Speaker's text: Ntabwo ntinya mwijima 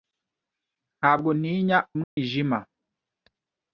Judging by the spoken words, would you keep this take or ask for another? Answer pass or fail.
pass